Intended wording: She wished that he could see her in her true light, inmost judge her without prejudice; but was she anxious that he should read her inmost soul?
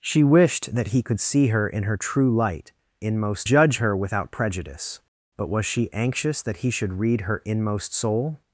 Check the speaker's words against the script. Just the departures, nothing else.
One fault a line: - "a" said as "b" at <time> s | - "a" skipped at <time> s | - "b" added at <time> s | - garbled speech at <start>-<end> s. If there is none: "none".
none